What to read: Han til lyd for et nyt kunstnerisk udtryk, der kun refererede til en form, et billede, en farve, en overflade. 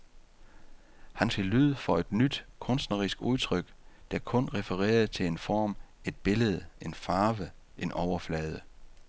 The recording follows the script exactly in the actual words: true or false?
true